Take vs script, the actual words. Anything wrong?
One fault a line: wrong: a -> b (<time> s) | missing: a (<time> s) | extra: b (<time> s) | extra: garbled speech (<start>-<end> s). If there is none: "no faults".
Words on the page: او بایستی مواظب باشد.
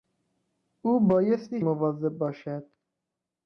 no faults